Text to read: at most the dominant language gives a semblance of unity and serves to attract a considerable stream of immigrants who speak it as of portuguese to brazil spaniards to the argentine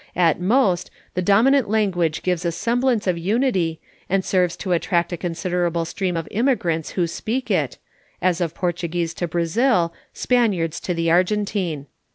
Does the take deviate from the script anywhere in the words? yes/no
no